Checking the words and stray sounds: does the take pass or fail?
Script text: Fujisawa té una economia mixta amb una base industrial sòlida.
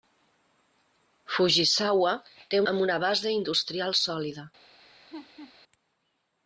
fail